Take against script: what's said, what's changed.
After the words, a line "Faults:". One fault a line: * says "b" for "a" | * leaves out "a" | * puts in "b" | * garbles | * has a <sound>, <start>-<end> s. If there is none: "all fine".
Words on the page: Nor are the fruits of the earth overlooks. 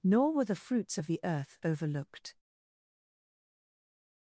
Nor were the fruits of the earth overlooked.
Faults:
* says "were" for "are"
* says "overlooked" for "overlooks"